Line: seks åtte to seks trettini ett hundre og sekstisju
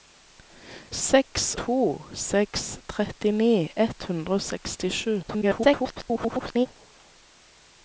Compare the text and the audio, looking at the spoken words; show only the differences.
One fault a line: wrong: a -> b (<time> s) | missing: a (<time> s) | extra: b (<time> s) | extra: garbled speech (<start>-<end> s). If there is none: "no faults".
missing: åtte (1.4 s)
extra: garbled speech (5.2-6.7 s)